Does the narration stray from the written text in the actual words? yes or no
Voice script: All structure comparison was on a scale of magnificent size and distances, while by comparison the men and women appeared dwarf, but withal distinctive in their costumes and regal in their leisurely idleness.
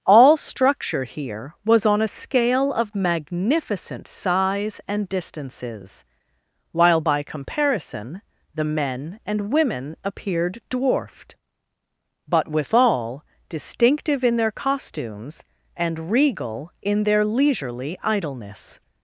yes